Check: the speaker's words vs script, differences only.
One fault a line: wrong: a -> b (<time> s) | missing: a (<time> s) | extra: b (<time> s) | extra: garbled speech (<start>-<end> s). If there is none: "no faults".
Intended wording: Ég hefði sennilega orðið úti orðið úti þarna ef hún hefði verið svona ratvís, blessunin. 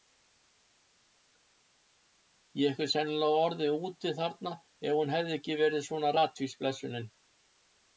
missing: orðið úti (4.2 s)
extra: ekki (5.4 s)